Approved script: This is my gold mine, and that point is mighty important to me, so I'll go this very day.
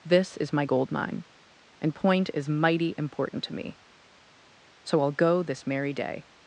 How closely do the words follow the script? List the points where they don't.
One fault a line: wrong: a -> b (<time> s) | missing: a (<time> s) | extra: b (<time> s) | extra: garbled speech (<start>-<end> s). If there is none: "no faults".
missing: that (1.9 s)
wrong: very -> merry (5.7 s)